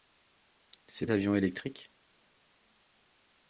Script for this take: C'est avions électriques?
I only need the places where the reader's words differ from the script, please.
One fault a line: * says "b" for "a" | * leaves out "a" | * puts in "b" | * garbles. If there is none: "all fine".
all fine